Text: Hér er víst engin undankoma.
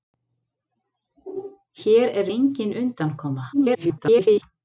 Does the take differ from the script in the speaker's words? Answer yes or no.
yes